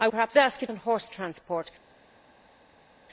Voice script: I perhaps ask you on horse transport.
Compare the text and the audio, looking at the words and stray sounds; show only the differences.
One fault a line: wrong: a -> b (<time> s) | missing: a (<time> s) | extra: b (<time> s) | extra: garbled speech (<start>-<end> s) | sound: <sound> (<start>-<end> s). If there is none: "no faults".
no faults